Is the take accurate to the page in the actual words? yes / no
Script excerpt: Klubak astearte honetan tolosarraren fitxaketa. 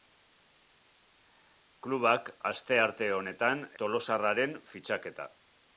yes